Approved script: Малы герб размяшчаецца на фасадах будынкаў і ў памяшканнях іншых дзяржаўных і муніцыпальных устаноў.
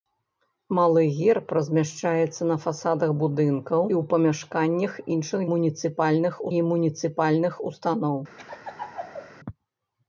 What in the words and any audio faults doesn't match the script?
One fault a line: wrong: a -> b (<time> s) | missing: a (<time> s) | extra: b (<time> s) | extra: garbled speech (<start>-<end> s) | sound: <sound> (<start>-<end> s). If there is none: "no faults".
missing: і (3.8 s)
wrong: дзяржаўных -> муніцыпальных (5.5 s)
sound: laugh (8.4-9.3 s)